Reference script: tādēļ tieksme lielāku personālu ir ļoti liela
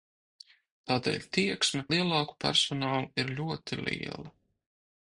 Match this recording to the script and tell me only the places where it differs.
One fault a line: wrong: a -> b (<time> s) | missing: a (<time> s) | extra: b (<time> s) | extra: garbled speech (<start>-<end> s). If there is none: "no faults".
no faults